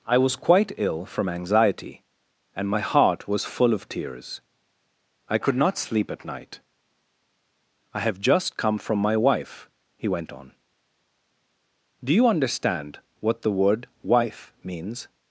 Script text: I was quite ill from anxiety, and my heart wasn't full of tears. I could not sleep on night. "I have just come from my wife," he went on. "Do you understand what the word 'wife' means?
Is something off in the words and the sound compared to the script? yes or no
yes